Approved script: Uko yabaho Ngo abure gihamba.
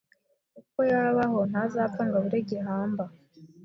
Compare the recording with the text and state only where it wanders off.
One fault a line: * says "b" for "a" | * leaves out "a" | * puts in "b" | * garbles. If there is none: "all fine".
* puts in "Ntazapfa"